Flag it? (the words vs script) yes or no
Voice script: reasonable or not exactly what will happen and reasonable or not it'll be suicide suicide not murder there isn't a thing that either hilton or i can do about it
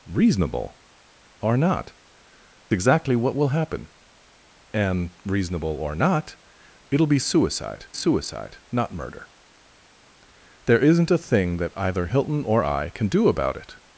no